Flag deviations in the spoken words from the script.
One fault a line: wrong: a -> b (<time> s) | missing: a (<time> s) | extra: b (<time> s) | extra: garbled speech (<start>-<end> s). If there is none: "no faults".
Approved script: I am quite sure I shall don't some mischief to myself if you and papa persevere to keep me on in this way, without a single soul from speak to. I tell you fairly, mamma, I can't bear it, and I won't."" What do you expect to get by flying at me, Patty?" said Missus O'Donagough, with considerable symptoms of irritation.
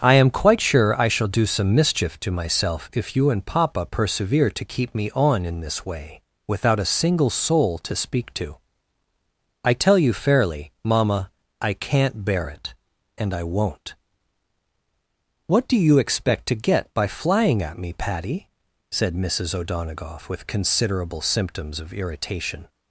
wrong: don't -> do (1.3 s)
wrong: from -> to (7.8 s)